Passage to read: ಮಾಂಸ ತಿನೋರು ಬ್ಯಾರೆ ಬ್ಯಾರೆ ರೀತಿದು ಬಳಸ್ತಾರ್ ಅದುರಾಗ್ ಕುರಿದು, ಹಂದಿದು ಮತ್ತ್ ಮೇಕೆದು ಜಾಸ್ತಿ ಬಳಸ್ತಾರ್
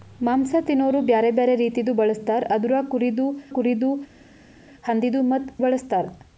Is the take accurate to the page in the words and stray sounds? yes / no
no